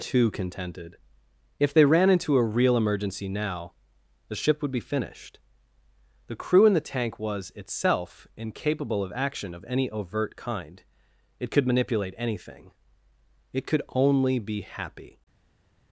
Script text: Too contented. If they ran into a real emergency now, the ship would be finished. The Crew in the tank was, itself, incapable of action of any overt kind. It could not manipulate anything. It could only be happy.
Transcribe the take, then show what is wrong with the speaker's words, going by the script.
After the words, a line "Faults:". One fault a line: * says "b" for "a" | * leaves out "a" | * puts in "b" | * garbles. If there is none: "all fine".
Too contented. If they ran into a real emergency now, the ship would be finished. The Crew in the tank was, itself, incapable of action of any overt kind. It could manipulate anything. It could only be happy.
Faults:
* leaves out "not"